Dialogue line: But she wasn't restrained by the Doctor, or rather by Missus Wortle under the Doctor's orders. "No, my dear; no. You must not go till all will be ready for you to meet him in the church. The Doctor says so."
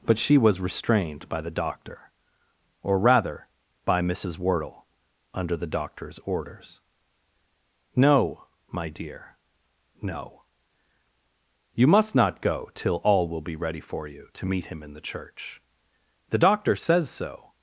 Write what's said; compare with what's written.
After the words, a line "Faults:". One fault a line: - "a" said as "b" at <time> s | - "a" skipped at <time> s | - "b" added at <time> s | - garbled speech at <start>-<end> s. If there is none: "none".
But she was restrained by the Doctor, or rather by Missus Wortle under the Doctor's orders. "No, my dear; no. You must not go till all will be ready for you to meet him in the church. The Doctor says so."
Faults:
- "wasn't" said as "was" at 0.4 s